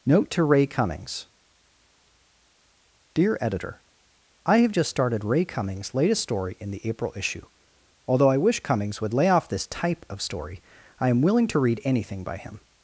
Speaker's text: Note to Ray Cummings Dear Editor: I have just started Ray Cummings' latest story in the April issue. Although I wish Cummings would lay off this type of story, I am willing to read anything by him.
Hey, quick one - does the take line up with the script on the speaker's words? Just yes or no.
yes